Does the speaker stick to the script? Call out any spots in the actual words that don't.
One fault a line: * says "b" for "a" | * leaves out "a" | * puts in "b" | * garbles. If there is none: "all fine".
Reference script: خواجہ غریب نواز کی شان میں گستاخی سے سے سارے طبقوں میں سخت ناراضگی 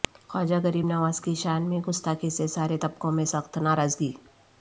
* leaves out "سے"